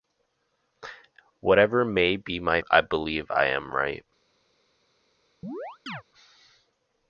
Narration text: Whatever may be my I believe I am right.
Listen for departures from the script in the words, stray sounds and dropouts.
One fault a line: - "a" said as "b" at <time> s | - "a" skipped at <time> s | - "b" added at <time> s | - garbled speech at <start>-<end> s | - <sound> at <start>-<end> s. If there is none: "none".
- chirp at 5.4-6.0 s